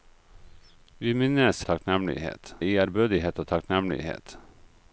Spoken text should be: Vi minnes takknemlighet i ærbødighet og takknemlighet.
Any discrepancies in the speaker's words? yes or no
no